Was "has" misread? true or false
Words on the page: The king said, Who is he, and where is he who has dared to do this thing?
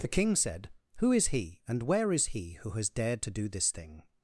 false